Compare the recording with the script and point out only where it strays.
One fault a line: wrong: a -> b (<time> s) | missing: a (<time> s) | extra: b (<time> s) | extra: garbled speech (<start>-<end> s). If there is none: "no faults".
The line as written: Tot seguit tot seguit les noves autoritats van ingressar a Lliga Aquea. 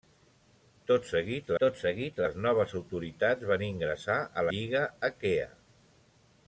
no faults